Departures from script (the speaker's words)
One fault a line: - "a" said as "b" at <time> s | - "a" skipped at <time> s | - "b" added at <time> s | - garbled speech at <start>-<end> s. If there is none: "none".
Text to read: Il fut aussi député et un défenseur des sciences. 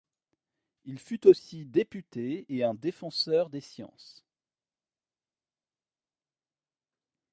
none